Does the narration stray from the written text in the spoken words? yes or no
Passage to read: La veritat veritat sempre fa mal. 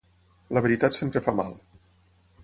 yes